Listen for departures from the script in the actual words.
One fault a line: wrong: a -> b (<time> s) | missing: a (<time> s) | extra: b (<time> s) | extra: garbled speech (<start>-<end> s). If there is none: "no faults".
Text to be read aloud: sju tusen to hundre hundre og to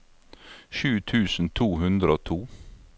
missing: hundre (2.1 s)